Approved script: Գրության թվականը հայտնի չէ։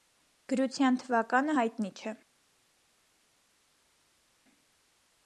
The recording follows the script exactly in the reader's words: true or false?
true